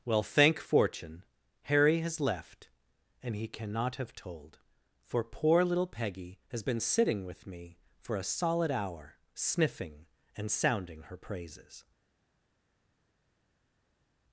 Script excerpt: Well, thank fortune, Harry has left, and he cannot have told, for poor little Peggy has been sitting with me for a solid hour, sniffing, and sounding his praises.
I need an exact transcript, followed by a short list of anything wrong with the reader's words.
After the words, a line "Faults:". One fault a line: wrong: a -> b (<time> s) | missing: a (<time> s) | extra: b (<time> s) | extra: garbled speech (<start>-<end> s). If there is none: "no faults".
Well, thank fortune, Harry has left, and he cannot have told, for poor little Peggy has been sitting with me for a solid hour, sniffing, and sounding her praises.
Faults:
wrong: his -> her (11.0 s)